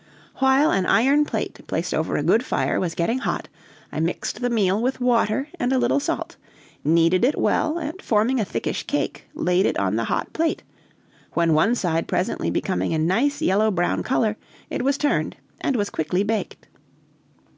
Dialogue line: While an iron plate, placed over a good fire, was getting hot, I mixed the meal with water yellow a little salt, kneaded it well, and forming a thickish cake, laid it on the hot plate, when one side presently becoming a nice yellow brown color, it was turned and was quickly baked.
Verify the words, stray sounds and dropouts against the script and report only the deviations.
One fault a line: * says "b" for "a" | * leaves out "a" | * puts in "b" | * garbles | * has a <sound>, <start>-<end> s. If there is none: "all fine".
* says "and" for "yellow"